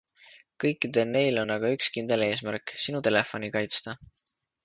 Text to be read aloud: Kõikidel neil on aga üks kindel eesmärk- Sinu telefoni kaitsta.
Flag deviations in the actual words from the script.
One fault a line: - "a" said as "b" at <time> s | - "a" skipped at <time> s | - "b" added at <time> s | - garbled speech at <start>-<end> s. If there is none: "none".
none